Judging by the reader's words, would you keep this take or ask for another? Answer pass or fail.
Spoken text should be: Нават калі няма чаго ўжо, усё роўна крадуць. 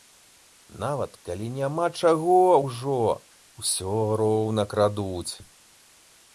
pass